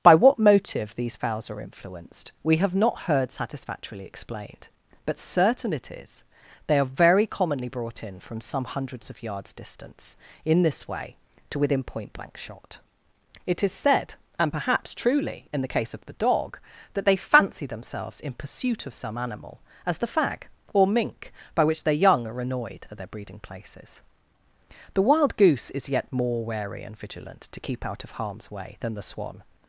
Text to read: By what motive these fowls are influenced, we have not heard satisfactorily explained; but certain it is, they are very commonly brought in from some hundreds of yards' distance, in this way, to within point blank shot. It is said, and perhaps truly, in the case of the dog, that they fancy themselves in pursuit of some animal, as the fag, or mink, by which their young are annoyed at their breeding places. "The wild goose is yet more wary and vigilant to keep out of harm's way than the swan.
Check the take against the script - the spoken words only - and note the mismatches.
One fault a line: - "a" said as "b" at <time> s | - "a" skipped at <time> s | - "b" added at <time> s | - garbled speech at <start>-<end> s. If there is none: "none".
none